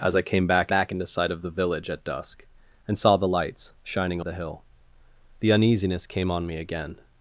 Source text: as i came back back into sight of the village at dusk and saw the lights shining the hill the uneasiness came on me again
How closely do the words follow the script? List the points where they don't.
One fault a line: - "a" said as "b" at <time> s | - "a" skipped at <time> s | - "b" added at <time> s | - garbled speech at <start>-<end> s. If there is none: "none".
none